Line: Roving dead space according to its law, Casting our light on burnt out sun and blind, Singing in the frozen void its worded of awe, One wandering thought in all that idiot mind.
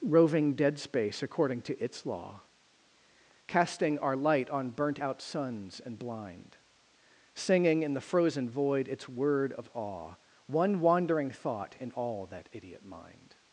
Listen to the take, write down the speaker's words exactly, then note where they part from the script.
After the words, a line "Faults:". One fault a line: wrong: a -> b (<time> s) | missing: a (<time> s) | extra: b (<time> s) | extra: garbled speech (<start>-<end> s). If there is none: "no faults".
Roving dead space according to its law, Casting our light on burnt out suns and blind, Singing in the frozen void its word of awe, One wandering thought in all that idiot mind.
Faults:
wrong: sun -> suns (5.2 s)
wrong: worded -> word (9.1 s)